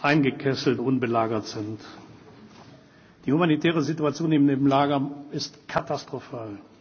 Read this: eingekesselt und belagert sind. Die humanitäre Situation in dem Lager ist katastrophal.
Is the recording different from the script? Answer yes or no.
no